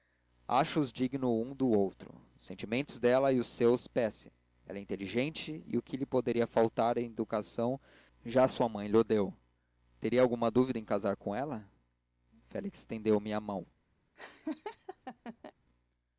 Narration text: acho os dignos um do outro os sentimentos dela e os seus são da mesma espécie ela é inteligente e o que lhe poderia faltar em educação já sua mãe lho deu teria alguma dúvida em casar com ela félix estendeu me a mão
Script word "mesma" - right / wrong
wrong